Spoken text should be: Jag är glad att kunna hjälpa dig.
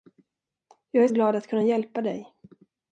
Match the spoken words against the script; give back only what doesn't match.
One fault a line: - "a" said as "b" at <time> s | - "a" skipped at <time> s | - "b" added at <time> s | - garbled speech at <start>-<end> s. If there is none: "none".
none